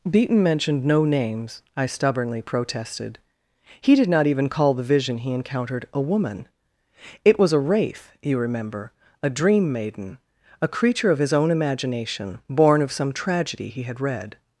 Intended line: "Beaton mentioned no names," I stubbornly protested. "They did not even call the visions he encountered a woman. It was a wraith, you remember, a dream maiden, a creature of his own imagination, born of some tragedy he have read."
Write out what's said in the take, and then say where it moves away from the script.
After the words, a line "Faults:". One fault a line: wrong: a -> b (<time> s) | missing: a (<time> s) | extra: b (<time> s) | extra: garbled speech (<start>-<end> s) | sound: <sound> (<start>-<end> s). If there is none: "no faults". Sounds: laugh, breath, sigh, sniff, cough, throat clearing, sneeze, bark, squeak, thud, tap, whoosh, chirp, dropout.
"Beaton mentioned no names," I stubbornly protested. "He did not even call the vision he encountered a woman. It was a wraith, you remember, a dream maiden, a creature of his own imagination, born of some tragedy he had read."
Faults:
wrong: They -> He (3.8 s)
wrong: visions -> vision (4.8 s)
wrong: have -> had (13.8 s)